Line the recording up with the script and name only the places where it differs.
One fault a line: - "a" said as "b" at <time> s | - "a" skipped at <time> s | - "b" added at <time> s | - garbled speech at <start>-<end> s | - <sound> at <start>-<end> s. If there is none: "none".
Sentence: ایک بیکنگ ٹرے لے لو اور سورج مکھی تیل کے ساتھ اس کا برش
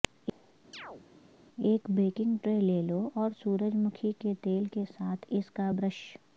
- chirp at 0.7-1.1 s
- "کے" added at 4.2 s